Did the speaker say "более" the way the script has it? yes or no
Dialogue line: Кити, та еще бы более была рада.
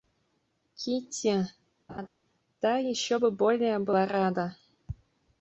yes